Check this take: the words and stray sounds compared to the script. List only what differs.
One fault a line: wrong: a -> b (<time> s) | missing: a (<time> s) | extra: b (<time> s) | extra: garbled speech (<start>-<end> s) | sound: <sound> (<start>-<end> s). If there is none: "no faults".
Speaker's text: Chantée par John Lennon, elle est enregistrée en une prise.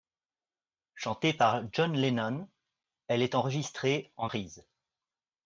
missing: une (4.3 s)